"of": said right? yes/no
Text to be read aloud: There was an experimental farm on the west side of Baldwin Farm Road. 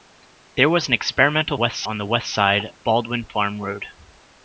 no